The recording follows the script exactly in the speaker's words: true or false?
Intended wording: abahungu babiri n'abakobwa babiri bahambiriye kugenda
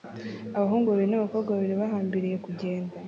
true